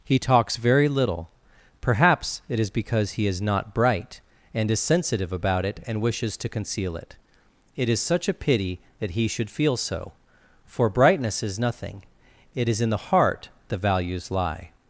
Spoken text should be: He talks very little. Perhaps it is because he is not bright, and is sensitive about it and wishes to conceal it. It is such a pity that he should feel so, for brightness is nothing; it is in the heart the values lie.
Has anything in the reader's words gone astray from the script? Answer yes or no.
no